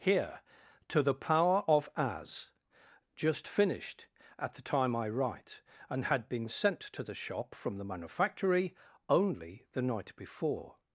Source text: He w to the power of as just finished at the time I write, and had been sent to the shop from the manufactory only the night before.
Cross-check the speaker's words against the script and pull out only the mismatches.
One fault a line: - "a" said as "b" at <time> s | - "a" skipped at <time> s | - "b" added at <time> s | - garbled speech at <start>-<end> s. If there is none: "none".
- "He w" said as "Here" at 0.0 s